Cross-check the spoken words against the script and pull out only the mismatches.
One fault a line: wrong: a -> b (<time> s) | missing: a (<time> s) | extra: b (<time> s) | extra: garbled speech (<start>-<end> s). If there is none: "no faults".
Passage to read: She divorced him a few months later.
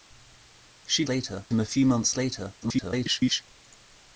wrong: divorced -> later (1.1 s)
extra: garbled speech (2.6-3.4 s)